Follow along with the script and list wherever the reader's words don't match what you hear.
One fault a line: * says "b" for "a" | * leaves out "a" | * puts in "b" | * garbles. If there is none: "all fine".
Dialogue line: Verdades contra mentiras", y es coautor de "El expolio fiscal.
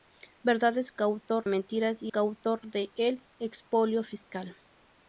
* says "coautor" for "contra"
* leaves out "es"